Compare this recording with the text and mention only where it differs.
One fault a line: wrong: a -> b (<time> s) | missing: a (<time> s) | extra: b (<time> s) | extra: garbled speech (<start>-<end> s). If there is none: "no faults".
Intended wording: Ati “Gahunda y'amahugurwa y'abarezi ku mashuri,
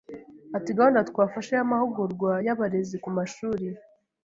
extra: twafashe (1.1 s)